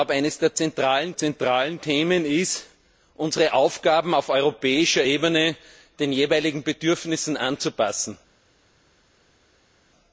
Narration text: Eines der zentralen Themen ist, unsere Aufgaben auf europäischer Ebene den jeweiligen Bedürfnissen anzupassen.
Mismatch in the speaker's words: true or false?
true